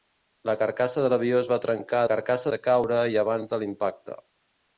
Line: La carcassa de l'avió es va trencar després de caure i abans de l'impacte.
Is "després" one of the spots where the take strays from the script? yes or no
yes